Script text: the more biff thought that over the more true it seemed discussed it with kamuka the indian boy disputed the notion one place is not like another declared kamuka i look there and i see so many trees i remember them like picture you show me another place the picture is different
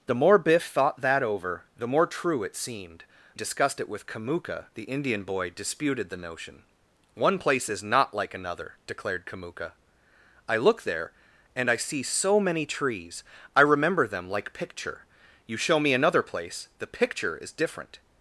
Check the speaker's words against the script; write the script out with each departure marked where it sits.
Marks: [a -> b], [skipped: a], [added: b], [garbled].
the more biff thought that over the more true it seemed discussed it with kamuka the indian boy disputed the notion one place is not like another declared kamuka i look there and i see so many trees i remember them like picture you show me another place the picture is different